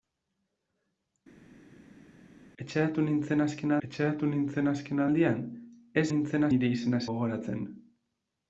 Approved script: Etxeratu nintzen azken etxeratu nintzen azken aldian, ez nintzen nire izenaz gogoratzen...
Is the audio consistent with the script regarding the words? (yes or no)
yes